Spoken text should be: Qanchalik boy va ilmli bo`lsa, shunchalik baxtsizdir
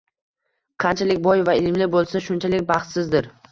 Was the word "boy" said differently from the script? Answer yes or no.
no